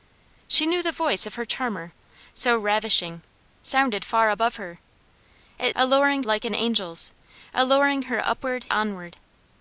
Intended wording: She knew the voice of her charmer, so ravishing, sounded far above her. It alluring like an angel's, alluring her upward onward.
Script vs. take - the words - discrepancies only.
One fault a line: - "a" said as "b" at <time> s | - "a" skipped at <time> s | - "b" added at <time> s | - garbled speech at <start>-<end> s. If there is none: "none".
none